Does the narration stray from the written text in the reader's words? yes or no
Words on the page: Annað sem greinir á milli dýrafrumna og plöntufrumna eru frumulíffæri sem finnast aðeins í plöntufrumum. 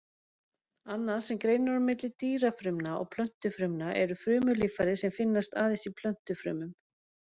no